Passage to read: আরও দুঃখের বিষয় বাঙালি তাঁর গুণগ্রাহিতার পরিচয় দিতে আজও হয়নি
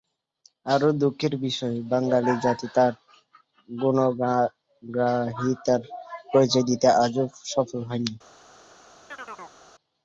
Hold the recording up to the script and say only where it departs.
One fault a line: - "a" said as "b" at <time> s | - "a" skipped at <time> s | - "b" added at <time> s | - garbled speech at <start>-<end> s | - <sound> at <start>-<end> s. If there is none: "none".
- "জাতি" added at 2.4 s
- "সফল" added at 7.5 s
- chirp at 9.1-9.6 s